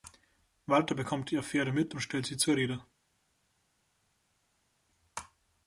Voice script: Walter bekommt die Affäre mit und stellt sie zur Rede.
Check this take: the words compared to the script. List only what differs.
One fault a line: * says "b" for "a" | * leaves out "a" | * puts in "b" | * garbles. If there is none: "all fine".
all fine